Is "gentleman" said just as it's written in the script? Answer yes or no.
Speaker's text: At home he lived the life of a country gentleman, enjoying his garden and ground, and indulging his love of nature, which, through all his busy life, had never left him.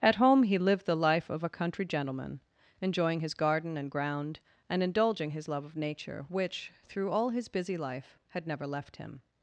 yes